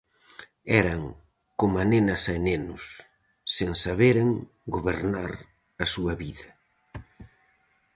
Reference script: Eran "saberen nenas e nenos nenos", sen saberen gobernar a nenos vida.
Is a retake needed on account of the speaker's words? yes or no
yes